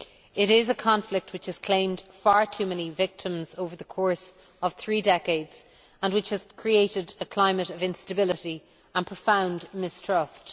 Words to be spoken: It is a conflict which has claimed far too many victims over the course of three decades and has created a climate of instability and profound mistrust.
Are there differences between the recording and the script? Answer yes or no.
yes